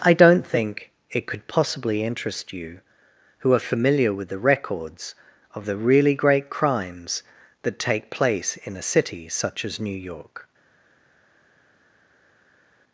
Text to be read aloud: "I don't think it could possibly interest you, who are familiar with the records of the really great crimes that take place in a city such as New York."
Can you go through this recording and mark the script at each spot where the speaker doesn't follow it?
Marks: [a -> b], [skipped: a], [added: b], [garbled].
"I don't think it could possibly interest you, who are familiar with the records of the really great crimes that take place in a city such as New York."